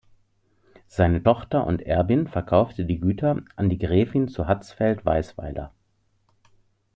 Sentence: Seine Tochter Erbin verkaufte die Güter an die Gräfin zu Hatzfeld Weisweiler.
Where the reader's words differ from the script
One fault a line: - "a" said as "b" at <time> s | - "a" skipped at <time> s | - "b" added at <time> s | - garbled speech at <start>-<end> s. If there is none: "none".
- "und" added at 1.7 s